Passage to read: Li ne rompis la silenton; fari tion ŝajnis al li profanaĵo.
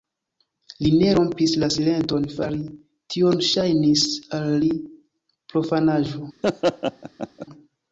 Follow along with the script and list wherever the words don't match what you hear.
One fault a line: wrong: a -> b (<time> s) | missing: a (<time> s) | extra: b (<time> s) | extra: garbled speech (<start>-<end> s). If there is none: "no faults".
no faults